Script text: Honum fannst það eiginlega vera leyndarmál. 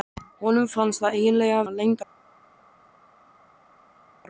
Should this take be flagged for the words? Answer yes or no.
yes